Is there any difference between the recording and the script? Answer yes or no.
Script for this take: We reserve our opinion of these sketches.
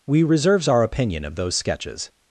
yes